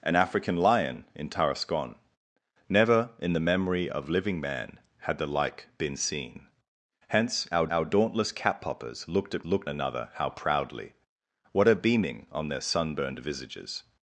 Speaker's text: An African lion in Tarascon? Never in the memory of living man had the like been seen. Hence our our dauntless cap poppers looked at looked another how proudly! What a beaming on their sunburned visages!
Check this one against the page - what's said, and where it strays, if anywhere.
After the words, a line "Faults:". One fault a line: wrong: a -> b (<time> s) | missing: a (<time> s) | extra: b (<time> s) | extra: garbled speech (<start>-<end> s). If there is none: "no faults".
An African lion in Tarascon? Never in the memory of living man had the like been seen. Hence our our dauntless cap poppers looked at looked another how proudly! What a beaming on their sunburned visages!
Faults:
no faults